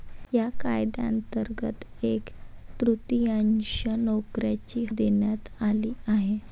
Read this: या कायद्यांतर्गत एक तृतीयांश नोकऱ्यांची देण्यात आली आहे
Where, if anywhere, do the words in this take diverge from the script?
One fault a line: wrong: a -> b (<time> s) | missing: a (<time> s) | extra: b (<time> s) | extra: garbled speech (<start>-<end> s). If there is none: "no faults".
no faults